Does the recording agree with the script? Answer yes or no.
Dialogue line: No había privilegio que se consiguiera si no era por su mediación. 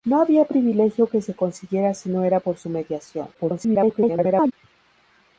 no